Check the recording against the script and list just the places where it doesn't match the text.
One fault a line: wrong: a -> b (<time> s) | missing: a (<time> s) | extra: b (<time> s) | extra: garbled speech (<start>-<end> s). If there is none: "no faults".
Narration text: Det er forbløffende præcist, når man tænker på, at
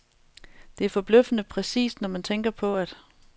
no faults